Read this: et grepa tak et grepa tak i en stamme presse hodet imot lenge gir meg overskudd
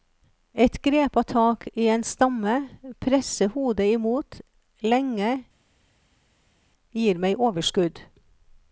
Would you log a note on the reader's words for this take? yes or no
yes